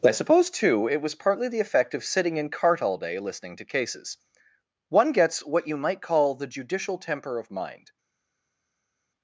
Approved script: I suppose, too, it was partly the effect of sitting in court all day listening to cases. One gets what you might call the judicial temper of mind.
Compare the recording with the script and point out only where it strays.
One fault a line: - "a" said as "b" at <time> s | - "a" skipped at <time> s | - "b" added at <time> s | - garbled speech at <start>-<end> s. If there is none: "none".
- "court" said as "cart" at 2.5 s